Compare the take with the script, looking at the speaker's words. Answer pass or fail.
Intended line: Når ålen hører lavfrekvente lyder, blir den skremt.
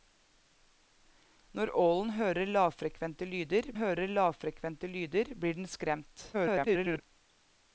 fail